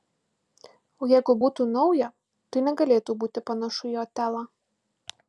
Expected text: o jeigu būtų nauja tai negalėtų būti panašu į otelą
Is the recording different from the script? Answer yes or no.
no